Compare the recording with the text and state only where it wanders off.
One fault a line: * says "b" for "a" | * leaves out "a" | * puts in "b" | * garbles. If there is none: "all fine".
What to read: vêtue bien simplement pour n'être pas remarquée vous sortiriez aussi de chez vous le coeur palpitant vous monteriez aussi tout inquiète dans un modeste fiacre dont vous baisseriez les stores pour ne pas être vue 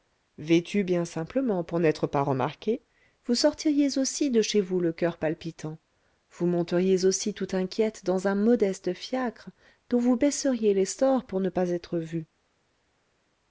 all fine